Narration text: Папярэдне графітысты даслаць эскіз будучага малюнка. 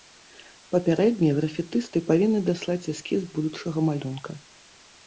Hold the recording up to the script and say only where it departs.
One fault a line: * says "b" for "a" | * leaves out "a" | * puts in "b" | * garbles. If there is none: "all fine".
* puts in "павінны"